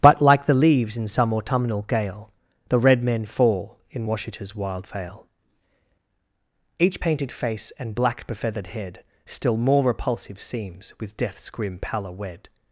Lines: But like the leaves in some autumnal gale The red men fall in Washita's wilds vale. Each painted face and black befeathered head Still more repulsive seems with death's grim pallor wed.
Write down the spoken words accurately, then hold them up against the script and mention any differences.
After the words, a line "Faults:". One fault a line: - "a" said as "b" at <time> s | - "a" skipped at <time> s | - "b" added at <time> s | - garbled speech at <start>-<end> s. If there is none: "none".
But like the leaves in some autumnal gale The red men fall in Washita's wild vale. Each painted face and black befeathered head Still more repulsive seems with death's grim pallor wed.
Faults:
- "wilds" said as "wild" at 4.6 s